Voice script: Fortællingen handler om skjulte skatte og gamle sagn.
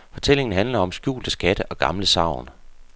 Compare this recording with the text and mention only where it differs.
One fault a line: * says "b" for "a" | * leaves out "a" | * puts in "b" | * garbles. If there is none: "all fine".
all fine